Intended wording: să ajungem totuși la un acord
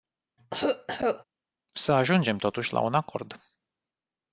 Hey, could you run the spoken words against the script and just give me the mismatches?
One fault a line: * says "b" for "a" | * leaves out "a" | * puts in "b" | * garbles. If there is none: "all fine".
all fine